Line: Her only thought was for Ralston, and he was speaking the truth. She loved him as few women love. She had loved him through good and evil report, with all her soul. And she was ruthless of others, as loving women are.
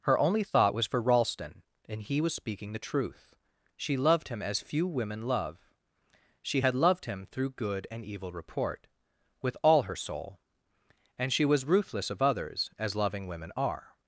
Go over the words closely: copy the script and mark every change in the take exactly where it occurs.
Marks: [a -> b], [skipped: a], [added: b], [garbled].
Her only thought was for Ralston, and he was speaking the truth. She loved him as few women love. She had loved him through good and evil report, with all her soul. And she was ruthless of others, as loving women are.